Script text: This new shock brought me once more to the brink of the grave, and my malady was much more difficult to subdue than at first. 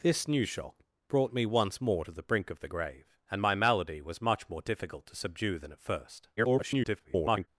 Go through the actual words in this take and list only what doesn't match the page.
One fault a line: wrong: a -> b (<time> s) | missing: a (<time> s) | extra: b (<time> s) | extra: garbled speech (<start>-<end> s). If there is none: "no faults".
extra: garbled speech (6.4-7.5 s)